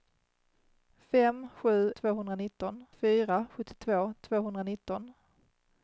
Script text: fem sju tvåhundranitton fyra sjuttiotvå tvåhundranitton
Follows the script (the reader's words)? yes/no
yes